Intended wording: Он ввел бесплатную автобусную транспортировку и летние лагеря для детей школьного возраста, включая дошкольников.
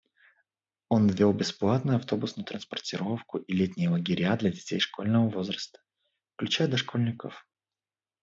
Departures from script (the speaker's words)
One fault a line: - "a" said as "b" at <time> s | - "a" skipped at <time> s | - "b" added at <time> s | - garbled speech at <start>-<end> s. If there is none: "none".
none